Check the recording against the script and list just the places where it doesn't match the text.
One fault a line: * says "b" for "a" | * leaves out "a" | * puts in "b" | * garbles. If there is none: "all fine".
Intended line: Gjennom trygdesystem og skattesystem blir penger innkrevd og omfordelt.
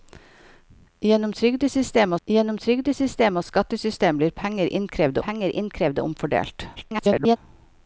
* puts in "gjennom trygdesystem"
* puts in "penger innkrevd"
* garbles